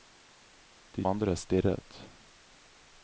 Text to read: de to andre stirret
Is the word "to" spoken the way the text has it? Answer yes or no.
no